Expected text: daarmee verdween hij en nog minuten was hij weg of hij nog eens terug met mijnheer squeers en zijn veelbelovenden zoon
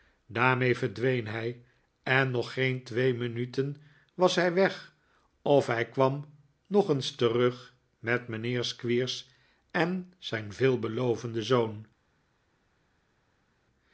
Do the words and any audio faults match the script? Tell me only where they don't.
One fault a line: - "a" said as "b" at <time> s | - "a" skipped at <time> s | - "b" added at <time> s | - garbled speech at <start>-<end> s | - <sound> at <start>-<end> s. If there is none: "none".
- "geen twee" added at 2.5 s
- "kwam" added at 5.9 s